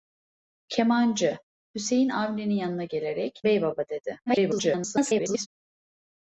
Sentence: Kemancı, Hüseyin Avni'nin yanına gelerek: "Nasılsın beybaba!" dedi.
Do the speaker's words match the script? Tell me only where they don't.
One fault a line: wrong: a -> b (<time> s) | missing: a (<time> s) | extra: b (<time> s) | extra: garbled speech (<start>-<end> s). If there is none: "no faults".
missing: Nasılsın (3.4 s)
extra: garbled speech (4.3-5.5 s)